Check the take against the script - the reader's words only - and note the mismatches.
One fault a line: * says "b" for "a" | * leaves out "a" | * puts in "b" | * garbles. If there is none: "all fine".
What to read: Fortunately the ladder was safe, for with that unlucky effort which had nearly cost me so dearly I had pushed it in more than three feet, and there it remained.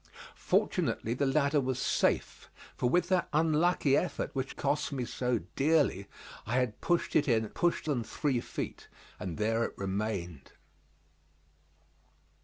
* leaves out "had nearly"
* says "pushed" for "more"